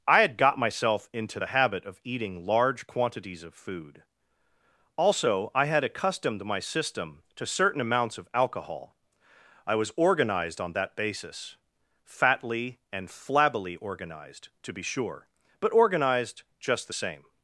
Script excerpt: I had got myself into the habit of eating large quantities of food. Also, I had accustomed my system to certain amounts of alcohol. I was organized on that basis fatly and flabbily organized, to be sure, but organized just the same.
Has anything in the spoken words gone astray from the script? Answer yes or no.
no